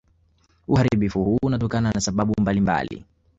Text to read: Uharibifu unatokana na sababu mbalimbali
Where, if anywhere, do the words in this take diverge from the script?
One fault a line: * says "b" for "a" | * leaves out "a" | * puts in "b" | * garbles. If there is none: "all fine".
* puts in "huu"